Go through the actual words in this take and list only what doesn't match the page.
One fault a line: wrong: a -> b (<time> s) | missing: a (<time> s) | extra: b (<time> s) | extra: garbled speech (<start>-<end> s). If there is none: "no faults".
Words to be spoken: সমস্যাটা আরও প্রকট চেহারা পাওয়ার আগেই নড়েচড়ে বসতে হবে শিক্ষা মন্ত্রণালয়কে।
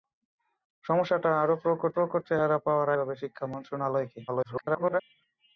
extra: প্রকট (1.9 s)
missing: আগেই নড়েচড়ে বসতে (2.9 s)
extra: garbled speech (4.3-5.0 s)